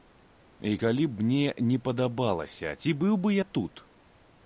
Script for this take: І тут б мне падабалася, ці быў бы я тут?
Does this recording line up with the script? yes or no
no